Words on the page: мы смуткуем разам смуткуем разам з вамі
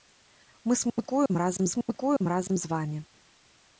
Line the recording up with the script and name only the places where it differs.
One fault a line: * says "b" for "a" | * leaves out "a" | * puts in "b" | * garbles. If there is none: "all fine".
all fine